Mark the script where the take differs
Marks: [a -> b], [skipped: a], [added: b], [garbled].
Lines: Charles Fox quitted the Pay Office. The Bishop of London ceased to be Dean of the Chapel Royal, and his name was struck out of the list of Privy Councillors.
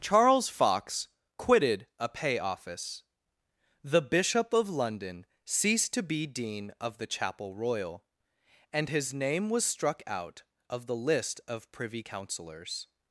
Charles Fox quitted [the -> a] Pay Office. The Bishop of London ceased to be Dean of the Chapel Royal, and his name was struck out of the list of Privy Councillors.